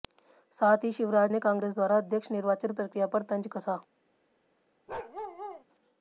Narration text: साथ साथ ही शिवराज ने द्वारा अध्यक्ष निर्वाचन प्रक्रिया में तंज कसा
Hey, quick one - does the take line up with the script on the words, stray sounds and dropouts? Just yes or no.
no